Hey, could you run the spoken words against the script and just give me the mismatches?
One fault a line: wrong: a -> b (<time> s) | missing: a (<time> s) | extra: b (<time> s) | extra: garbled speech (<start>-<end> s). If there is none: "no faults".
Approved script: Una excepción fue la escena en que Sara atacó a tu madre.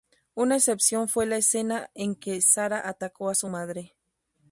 wrong: tu -> su (3.3 s)